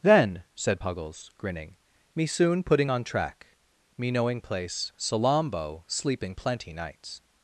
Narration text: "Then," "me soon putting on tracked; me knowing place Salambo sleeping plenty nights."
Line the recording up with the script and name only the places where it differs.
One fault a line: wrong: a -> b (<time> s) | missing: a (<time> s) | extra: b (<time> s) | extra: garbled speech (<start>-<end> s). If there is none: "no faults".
extra: said Puggles grinning (0.6 s)
wrong: tracked -> track (3.0 s)